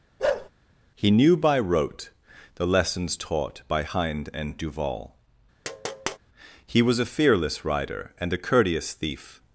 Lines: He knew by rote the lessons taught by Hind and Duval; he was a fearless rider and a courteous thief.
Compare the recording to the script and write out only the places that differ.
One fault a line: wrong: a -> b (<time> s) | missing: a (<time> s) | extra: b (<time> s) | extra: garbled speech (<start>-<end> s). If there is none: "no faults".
no faults